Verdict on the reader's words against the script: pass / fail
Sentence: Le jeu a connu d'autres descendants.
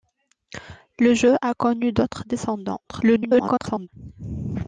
fail